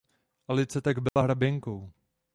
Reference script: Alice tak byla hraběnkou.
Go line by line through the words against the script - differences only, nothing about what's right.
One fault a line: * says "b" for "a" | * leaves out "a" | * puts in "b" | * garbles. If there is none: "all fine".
all fine